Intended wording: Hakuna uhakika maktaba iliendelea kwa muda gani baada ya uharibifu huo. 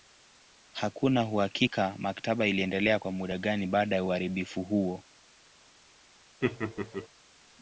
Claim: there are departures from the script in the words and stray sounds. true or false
true